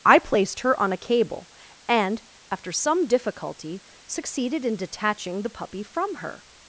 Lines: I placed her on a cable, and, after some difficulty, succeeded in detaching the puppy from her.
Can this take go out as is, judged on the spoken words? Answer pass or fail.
pass